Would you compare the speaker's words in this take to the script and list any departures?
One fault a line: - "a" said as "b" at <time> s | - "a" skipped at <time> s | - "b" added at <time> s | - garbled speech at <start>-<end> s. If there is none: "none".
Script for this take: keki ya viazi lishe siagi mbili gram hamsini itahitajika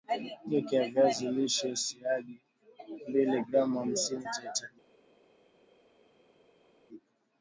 none